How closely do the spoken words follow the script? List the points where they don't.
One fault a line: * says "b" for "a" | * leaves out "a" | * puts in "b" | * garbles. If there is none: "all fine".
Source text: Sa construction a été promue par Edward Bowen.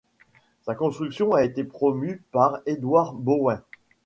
all fine